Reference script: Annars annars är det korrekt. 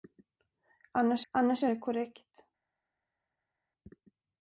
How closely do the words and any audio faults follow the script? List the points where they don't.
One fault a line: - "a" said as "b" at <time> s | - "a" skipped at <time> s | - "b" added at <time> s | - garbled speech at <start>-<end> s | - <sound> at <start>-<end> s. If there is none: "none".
none